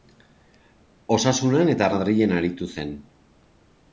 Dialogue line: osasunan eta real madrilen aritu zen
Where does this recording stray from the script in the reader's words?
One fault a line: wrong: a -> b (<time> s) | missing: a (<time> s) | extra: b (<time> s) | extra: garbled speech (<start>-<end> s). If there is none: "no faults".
missing: real (1.9 s)